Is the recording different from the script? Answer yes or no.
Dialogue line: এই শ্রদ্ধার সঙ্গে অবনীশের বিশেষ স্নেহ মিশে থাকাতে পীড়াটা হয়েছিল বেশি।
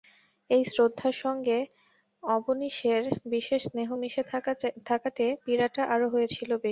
yes